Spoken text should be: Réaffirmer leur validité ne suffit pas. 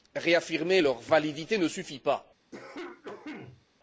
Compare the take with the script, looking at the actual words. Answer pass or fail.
pass